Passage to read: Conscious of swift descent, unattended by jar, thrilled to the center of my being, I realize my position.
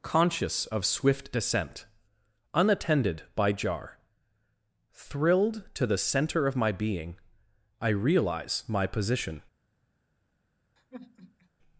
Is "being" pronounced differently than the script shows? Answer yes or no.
no